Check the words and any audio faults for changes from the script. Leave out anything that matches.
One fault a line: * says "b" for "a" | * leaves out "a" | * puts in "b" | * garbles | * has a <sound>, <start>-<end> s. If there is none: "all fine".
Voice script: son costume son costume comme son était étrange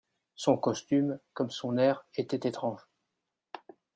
* leaves out "son costume"
* puts in "air"